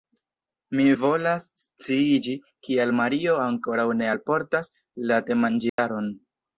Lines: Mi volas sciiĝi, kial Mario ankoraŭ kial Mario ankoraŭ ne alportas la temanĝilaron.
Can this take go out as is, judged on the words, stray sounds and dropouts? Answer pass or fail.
fail